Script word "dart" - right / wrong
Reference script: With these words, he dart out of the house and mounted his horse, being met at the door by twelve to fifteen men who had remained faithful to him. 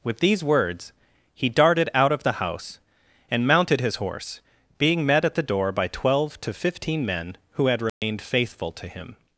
wrong